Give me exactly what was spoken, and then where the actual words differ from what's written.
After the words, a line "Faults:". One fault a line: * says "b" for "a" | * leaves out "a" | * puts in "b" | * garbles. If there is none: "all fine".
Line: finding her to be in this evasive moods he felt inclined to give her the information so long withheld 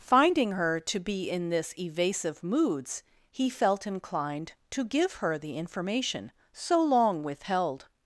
finding her to be in this evasive moods he felt inclined to give her the information so long withheld
Faults:
all fine